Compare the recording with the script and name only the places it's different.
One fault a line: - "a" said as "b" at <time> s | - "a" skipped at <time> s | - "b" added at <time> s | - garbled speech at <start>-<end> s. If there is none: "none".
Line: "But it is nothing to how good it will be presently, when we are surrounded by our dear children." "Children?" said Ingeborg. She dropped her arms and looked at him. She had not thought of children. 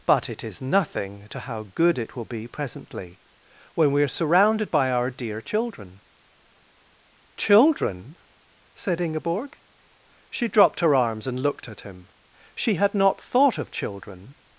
none